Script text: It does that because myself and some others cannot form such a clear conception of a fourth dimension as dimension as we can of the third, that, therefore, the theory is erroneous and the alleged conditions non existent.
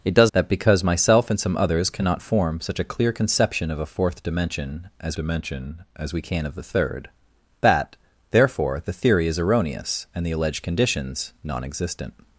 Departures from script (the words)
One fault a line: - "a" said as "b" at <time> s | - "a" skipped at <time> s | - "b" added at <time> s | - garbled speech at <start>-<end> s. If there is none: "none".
none